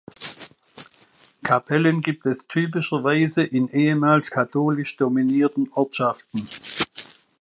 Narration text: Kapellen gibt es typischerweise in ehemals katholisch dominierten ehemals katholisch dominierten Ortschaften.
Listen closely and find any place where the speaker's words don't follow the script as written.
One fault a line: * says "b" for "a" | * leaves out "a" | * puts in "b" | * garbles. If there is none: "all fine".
* leaves out "ehemals katholisch dominierten"